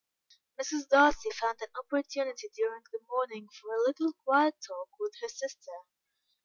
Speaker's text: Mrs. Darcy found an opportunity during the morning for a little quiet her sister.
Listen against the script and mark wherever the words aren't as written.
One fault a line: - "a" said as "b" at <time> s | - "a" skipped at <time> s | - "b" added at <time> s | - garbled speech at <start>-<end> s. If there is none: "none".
- "talk with" added at 4.6 s